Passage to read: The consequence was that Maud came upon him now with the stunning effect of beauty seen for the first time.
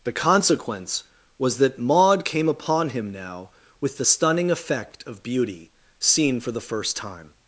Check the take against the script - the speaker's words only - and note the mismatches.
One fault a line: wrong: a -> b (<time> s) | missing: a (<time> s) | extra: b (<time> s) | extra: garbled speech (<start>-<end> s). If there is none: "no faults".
no faults